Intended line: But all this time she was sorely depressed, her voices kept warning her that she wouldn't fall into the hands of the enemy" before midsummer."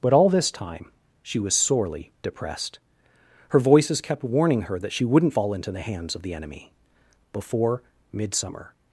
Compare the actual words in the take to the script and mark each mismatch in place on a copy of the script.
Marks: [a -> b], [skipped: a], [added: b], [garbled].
But all this time she was sorely depressed, her voices kept warning her that she wouldn't fall into the hands of the enemy" before midsummer."